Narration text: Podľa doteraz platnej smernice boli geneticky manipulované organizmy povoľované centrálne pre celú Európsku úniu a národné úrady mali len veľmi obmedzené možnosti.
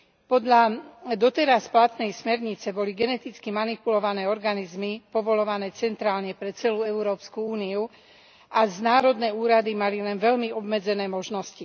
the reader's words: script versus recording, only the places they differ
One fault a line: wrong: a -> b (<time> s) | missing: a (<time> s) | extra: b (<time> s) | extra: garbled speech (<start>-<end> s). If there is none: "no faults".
no faults